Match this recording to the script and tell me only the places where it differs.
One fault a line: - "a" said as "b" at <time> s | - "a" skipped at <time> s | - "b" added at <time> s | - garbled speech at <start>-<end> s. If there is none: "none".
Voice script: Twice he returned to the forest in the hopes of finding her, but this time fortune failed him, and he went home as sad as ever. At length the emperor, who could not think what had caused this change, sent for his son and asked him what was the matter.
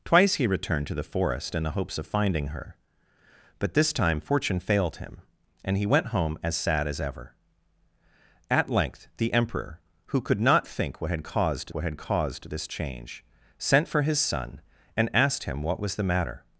- "what had caused" added at 11.7 s